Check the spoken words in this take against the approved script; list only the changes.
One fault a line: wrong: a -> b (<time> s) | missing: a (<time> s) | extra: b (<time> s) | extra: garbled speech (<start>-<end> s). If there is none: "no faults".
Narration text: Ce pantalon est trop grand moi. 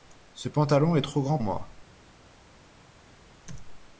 no faults